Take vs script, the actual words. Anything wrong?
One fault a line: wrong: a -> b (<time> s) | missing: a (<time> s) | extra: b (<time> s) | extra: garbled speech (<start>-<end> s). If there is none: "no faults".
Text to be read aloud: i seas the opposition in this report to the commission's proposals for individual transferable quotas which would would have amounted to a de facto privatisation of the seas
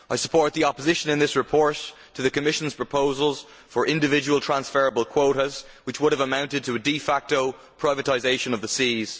wrong: seas -> support (0.2 s)
missing: would (6.1 s)